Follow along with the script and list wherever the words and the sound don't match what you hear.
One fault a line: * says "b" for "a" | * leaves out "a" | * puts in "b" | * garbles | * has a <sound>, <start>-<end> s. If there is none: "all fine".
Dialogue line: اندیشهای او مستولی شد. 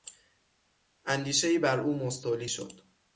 * puts in "بر"